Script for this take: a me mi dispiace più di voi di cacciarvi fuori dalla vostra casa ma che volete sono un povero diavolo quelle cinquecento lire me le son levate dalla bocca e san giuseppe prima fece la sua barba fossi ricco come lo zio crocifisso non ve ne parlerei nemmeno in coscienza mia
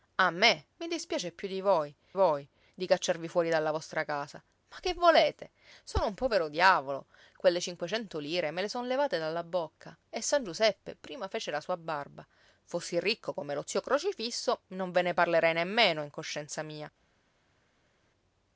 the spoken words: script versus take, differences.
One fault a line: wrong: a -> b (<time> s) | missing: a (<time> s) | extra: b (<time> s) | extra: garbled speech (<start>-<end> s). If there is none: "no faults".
extra: voi (2.1 s)